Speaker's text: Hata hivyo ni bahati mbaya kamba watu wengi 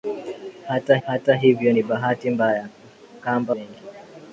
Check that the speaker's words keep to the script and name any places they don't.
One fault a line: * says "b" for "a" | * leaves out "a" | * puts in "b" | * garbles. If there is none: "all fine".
* puts in "hata"
* leaves out "watu"